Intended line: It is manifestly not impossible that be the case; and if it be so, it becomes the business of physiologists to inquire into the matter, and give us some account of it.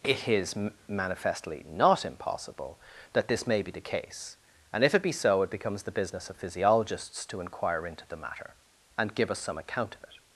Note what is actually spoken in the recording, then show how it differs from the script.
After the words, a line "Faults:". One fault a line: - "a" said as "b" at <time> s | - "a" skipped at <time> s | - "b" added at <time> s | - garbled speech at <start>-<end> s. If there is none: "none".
It is manifestly not impossible that this may be the case; and if it be so, it becomes the business of physiologists to inquire into the matter, and give us some account of it.
Faults:
- "this may" added at 3.3 s